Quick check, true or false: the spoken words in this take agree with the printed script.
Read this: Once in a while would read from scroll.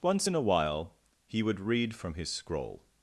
false